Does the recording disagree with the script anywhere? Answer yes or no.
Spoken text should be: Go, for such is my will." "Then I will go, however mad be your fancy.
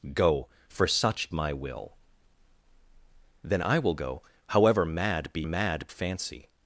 yes